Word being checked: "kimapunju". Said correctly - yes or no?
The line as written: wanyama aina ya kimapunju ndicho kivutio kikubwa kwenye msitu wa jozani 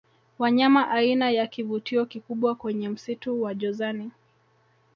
no